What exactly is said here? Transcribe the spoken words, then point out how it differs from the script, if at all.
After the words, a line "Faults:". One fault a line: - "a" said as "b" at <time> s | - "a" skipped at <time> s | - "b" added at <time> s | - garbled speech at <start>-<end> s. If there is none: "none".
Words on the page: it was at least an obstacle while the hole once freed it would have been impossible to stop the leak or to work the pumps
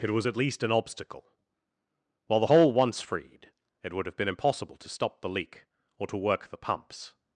it was at least an obstacle while the hole once freed it would have been impossible to stop the leak or to work the pumps
Faults:
none